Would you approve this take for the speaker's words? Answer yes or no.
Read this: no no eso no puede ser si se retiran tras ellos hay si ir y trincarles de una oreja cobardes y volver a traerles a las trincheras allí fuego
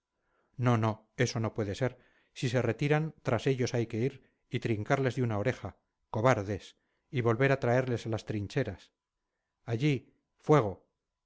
no